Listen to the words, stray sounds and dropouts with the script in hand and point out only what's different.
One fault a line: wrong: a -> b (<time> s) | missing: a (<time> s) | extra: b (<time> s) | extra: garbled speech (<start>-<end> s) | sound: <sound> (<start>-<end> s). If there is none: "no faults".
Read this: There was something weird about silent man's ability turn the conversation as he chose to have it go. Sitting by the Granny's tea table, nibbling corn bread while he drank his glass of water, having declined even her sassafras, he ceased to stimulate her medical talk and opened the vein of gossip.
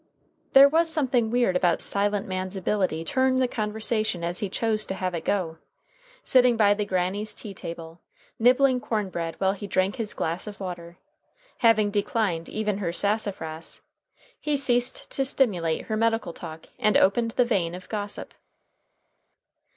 no faults